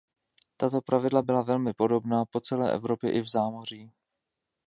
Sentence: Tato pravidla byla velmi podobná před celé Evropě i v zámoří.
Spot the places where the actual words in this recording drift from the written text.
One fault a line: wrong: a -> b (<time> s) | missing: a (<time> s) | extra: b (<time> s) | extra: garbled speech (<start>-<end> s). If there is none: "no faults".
wrong: před -> po (2.2 s)